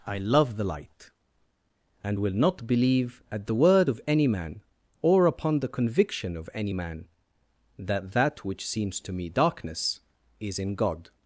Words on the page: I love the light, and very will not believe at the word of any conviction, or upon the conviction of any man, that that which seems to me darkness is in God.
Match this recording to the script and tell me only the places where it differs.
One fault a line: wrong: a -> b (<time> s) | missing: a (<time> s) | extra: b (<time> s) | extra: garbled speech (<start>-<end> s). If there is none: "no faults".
missing: very (2.2 s)
wrong: conviction -> man (4.3 s)